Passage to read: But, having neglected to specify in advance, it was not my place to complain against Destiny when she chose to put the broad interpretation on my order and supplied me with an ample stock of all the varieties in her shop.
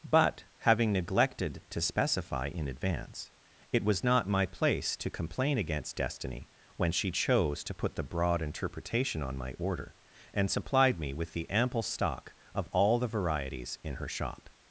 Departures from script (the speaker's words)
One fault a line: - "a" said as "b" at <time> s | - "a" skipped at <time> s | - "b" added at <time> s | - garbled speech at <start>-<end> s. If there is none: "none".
- "an" said as "the" at 11.3 s